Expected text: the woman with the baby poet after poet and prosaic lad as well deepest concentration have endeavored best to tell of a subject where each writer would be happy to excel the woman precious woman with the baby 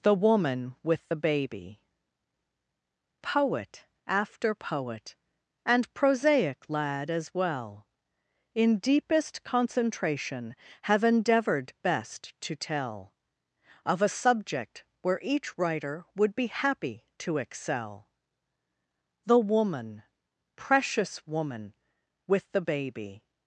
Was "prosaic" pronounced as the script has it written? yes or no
yes